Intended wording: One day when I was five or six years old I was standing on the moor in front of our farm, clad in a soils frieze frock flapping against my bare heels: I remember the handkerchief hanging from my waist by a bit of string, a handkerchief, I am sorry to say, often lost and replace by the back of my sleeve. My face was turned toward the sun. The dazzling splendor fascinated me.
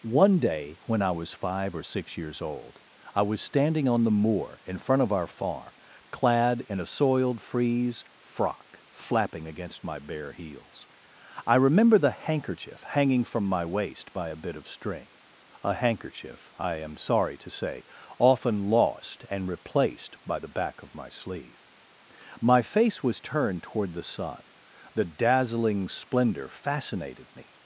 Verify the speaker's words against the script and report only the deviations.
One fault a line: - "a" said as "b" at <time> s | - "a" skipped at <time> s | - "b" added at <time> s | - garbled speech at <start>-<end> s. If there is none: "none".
- "soils" said as "soiled" at 6.9 s
- "replace" said as "replaced" at 19.5 s